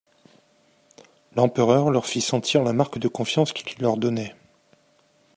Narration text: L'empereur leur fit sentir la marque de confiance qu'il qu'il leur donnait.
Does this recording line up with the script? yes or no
yes